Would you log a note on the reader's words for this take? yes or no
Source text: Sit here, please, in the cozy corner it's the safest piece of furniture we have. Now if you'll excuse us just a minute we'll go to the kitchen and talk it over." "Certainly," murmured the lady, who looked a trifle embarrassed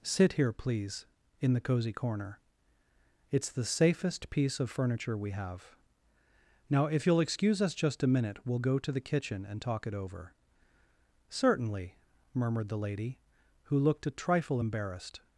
no